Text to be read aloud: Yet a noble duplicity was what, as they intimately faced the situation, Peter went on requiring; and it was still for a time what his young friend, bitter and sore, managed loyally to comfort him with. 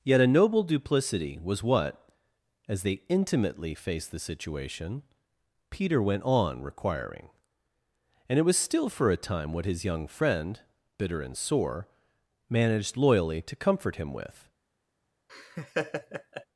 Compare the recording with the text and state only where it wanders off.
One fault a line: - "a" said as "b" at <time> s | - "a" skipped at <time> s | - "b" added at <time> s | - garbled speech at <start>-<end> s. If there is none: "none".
none